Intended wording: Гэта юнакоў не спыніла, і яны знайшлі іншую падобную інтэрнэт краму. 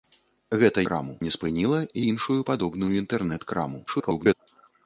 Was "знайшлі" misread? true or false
true